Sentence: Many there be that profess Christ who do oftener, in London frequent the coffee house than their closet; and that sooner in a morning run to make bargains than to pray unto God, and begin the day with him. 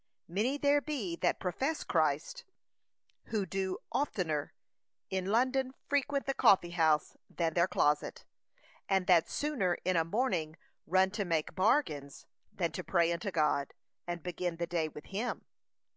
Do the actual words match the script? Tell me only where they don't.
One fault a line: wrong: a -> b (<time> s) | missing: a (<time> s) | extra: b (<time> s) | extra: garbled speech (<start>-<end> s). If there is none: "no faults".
no faults